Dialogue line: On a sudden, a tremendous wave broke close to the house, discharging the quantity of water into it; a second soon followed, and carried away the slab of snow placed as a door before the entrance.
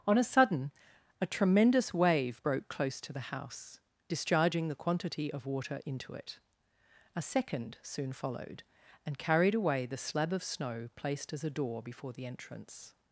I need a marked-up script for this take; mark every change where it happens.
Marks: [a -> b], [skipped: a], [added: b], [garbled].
On a sudden, a tremendous wave broke close to the house, discharging the quantity of water into it; a second soon followed, and carried away the slab of snow placed as a door before the entrance.